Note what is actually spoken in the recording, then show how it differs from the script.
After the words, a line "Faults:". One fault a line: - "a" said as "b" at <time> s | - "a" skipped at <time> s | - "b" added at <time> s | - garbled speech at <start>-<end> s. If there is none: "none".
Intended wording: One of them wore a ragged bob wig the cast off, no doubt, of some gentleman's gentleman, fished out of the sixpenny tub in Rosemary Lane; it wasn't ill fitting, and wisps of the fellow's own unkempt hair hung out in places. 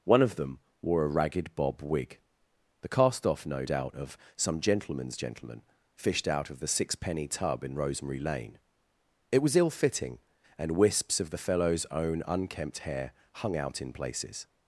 One of them wore a ragged bob wig the cast off, no doubt, of some gentleman's gentleman, fished out of the sixpenny tub in Rosemary Lane; it was ill fitting, and wisps of the fellow's own unkempt hair hung out in places.
Faults:
- "wasn't" said as "was" at 9.4 s